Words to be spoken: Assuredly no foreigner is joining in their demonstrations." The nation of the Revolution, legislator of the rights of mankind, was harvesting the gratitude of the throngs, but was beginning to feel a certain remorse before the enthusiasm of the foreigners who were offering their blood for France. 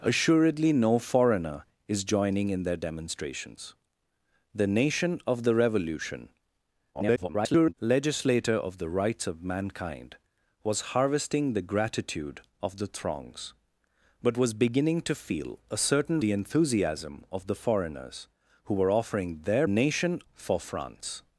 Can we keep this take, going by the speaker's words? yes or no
no